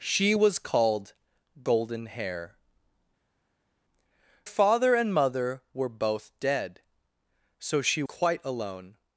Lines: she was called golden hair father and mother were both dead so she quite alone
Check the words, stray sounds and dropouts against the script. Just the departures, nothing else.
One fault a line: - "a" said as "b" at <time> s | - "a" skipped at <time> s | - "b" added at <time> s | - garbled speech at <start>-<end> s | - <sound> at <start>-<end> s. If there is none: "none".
none